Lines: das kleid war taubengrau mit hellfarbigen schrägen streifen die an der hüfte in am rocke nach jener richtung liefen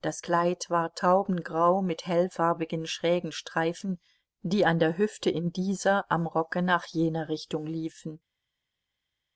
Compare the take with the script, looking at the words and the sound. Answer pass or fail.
fail